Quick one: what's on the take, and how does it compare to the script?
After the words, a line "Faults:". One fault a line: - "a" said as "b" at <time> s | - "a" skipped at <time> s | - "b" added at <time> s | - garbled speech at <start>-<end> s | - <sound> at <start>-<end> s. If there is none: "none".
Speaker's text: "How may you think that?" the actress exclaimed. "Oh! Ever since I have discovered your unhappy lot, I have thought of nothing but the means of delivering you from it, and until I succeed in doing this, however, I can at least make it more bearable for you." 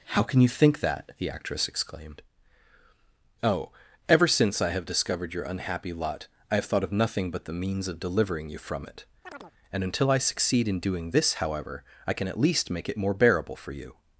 "How can you think that?" the actress exclaimed. "Oh! Ever since I have discovered your unhappy lot, I have thought of nothing but the means of delivering you from it, and until I succeed in doing this, however, I can at least make it more bearable for you."
Faults:
- "may" said as "can" at 0.2 s
- chirp at 9.2-9.5 s